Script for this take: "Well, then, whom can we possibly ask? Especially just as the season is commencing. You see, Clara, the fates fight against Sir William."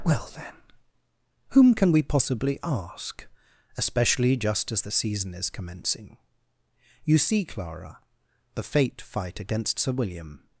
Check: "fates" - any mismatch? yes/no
yes